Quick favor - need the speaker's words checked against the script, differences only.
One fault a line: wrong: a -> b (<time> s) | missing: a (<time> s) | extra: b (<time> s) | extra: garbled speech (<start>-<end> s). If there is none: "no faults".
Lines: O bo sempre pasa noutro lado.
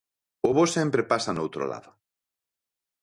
no faults